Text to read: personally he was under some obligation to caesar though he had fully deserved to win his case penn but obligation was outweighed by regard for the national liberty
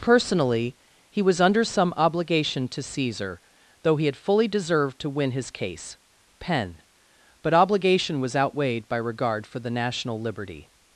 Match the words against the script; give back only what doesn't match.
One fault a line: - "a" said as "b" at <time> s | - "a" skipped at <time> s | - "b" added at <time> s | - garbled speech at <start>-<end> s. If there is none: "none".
none